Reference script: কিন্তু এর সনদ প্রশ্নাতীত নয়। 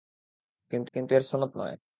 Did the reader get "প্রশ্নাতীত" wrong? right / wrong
wrong